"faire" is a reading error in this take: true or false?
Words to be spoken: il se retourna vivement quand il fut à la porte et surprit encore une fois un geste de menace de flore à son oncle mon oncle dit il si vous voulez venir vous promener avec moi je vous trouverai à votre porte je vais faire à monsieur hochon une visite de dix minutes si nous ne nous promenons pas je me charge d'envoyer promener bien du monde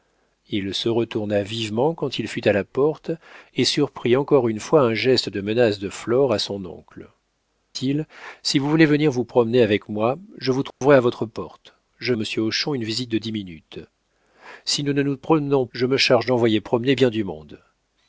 true